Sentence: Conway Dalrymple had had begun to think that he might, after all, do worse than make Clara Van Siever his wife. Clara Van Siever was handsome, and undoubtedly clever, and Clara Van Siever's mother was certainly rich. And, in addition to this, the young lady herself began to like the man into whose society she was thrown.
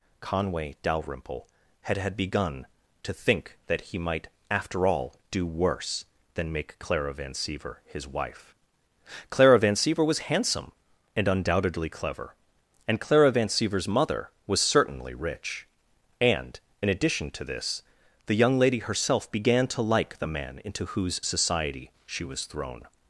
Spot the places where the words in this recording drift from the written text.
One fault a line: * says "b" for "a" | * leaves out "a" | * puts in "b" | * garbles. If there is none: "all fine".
all fine